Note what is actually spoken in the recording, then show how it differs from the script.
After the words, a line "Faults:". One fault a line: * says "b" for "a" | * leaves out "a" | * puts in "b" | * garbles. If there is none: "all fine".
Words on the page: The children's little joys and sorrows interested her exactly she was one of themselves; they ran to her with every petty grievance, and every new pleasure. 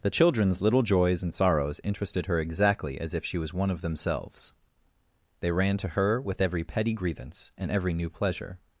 The children's little joys and sorrows interested her exactly as if she was one of themselves; they ran to her with every petty grievance, and every new pleasure.
Faults:
* puts in "as if"